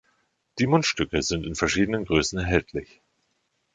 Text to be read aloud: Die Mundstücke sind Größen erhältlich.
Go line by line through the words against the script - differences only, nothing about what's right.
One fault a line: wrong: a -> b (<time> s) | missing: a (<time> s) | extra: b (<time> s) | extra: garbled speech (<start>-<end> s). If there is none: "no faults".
extra: in verschiedenen (1.4 s)